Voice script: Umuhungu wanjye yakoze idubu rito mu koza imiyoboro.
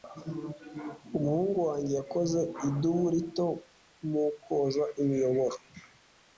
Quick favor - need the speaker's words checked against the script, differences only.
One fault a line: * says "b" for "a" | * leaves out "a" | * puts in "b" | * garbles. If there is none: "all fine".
all fine